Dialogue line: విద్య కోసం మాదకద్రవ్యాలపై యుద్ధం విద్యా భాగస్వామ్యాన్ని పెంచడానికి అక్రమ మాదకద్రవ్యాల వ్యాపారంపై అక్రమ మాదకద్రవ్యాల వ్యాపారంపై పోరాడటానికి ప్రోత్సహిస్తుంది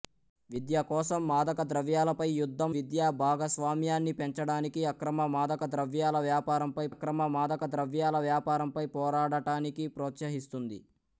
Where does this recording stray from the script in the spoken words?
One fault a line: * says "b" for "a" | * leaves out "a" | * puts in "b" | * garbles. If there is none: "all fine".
all fine